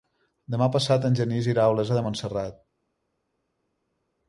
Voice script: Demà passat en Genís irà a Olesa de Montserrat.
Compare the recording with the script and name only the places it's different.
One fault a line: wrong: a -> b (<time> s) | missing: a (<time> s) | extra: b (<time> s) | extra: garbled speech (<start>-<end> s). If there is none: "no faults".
no faults